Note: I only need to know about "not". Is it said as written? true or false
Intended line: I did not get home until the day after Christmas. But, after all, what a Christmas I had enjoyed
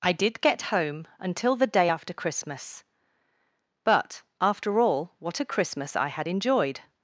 false